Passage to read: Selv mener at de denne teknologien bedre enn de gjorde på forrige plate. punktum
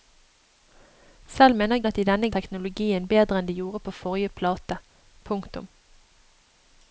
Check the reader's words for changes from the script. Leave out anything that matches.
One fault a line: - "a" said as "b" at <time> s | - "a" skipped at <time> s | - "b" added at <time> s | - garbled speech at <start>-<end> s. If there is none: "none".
none